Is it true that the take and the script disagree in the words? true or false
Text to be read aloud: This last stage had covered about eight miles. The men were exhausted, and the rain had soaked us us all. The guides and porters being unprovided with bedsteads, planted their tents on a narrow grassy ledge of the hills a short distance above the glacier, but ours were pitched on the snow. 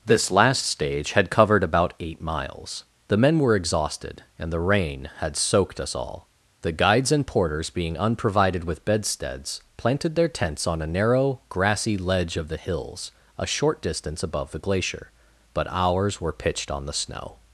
true